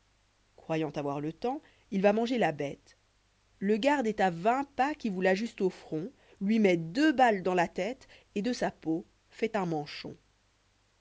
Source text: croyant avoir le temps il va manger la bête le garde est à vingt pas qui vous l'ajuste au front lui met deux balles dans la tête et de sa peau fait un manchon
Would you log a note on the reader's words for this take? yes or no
no